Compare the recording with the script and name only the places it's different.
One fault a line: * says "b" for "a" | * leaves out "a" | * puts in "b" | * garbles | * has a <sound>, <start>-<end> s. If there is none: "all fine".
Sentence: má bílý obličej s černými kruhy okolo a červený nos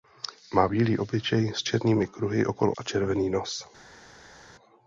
all fine